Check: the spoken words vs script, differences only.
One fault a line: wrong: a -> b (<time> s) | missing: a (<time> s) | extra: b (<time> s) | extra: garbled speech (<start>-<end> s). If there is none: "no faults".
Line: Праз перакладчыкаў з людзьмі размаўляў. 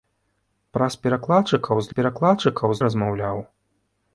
wrong: людзьмі -> перакладчыкаў (2.0 s)